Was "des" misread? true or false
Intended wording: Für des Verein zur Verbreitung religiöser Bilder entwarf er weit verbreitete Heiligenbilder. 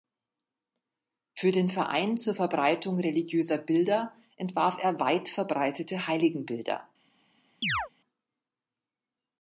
true